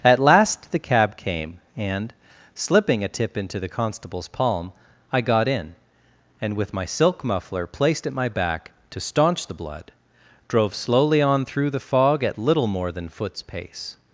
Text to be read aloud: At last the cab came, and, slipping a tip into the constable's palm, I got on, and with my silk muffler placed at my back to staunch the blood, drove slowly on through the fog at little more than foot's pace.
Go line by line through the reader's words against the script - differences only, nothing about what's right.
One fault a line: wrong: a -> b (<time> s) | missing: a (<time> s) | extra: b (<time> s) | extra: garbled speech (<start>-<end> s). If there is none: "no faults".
wrong: on -> in (5.5 s)